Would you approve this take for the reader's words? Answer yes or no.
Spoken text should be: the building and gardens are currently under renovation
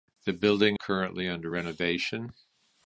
no